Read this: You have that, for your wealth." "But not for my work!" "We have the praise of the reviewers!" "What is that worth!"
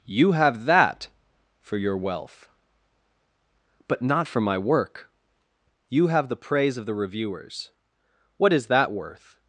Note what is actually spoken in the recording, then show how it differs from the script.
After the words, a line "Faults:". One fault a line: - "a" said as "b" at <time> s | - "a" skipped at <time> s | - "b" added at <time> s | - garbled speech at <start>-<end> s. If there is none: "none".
You have that, for your wealth." "But not for my work!" "You have the praise of the reviewers!" "What is that worth!"
Faults:
- "We" said as "You" at 5.9 s